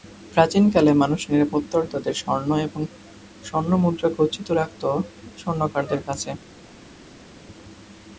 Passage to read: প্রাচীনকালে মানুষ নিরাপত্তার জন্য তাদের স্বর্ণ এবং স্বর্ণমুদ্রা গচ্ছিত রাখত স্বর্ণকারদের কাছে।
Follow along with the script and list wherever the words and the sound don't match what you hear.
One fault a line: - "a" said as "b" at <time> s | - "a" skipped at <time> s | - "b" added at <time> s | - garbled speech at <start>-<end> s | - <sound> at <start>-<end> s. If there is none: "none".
- "জন্য" skipped at 1.8 s